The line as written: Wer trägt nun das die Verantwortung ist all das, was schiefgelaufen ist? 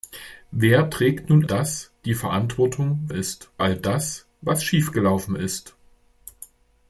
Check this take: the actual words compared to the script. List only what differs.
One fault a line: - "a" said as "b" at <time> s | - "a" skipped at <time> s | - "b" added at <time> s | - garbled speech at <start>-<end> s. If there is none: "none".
none